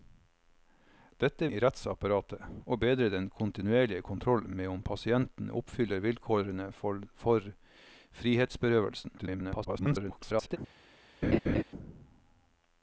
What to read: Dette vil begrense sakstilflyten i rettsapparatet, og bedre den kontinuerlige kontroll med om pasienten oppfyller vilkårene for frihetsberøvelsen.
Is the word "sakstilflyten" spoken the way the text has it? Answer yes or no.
no